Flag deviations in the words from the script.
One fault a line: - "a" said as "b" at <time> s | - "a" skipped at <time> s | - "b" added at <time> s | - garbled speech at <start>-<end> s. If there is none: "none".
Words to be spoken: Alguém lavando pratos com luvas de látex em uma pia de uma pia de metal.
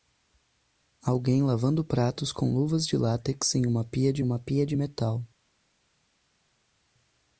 none